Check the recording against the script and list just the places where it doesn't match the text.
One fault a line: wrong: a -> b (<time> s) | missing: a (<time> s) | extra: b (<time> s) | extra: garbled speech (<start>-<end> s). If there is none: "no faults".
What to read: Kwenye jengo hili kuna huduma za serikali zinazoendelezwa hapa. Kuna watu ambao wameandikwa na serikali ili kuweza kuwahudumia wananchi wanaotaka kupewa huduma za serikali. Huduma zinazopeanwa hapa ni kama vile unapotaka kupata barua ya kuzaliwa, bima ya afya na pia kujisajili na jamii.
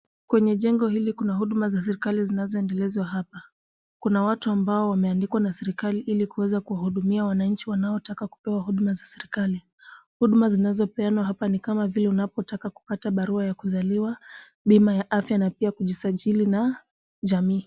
no faults